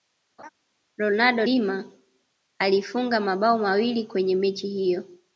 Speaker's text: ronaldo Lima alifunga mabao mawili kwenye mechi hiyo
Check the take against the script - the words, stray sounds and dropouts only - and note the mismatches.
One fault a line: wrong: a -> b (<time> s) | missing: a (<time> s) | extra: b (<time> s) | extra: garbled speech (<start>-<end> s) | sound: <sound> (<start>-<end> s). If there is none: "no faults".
sound: laugh (0.4-0.5 s)